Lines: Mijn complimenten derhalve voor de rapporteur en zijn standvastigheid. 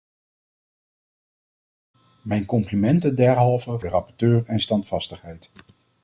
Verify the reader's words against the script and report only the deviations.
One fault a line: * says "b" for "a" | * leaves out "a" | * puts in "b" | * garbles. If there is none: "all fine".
* leaves out "voor"
* leaves out "zijn"